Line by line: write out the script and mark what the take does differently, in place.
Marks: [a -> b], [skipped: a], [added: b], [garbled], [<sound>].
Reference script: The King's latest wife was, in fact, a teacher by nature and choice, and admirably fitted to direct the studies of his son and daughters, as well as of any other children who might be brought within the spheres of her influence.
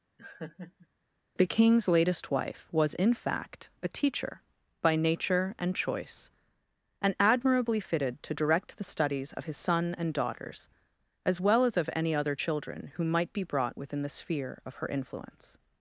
[laugh] The King's latest wife was, in fact, a teacher by nature and choice, and admirably fitted to direct the studies of his son and daughters, as well as of any other children who might be brought within the [spheres -> sphere] of her influence.